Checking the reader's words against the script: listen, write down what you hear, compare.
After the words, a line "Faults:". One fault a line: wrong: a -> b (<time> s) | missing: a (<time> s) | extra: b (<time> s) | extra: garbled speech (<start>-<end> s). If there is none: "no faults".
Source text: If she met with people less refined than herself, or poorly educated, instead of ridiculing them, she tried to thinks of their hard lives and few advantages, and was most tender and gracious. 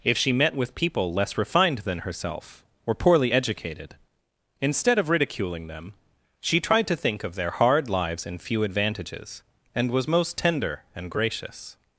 If she met with people less refined than herself, or poorly educated, instead of ridiculing them, she tried to think of their hard lives and few advantages, and was most tender and gracious.
Faults:
wrong: thinks -> think (7.0 s)